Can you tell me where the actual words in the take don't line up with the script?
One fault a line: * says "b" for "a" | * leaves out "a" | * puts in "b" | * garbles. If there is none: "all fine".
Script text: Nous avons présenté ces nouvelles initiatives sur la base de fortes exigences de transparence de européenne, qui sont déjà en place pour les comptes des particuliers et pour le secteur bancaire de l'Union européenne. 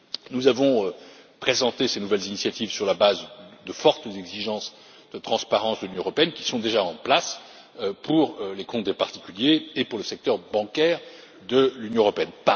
* puts in "l'Union"